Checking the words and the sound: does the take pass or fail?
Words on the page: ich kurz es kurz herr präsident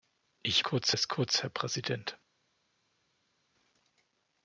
pass